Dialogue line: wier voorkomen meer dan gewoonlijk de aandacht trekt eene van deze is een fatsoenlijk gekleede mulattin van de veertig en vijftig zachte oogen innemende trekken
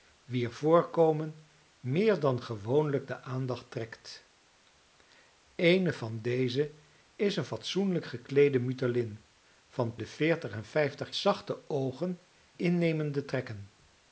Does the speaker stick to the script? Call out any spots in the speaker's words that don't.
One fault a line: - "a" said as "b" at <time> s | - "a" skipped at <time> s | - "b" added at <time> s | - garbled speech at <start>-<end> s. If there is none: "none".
none